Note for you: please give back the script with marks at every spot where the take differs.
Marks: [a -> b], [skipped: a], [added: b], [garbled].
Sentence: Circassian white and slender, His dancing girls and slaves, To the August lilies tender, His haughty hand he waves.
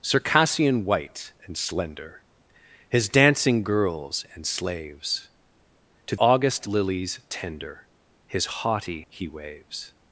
Circassian white and slender, His dancing girls and slaves, To [skipped: the] August lilies tender, His haughty [skipped: hand] he waves.